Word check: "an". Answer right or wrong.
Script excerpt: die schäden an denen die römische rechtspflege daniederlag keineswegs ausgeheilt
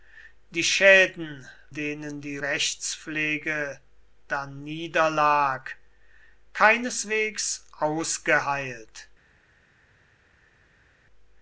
wrong